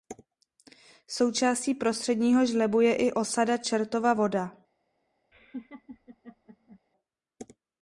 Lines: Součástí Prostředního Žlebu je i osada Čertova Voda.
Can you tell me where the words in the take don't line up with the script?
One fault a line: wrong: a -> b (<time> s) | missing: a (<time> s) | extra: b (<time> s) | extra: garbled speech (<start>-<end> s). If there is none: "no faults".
no faults